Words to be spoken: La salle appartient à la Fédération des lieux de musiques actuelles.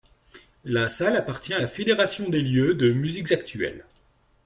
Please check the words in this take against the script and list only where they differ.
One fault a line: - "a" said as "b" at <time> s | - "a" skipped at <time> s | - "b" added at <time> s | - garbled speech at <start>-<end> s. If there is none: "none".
none